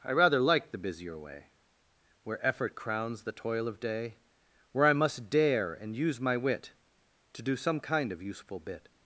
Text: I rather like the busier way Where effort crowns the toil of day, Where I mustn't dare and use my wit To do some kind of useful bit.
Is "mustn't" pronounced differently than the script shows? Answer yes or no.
yes